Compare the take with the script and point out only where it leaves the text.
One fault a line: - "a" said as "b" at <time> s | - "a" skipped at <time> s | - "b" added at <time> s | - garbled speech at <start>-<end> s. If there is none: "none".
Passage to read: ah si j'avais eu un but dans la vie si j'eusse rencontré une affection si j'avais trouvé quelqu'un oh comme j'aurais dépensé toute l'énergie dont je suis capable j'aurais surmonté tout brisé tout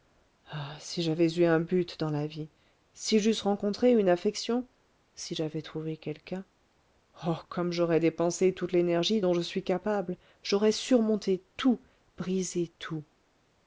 none